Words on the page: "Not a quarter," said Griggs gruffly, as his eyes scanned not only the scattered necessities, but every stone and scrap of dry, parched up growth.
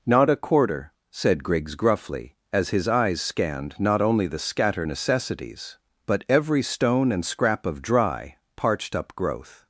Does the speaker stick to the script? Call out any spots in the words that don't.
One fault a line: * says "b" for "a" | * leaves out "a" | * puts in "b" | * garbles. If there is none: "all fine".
* says "scatter" for "scattered"